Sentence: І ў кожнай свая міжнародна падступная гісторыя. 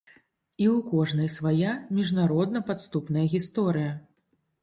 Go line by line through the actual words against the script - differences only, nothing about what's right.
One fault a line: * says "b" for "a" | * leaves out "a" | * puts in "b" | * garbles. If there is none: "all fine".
all fine